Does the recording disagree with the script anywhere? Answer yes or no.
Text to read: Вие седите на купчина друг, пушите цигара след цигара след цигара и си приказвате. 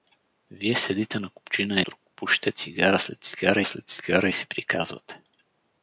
no